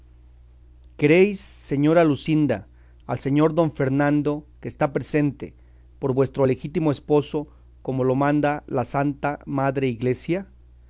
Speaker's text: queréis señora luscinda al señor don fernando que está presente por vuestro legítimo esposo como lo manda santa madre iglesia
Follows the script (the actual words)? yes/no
no